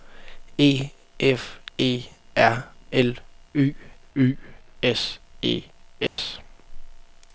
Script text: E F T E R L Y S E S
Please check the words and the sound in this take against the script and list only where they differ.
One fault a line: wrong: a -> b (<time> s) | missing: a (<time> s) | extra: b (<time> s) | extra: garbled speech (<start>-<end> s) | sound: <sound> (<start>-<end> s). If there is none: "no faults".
missing: T (1.6 s)
extra: Y (4.1 s)
sound: dropout (6.1-6.2 s)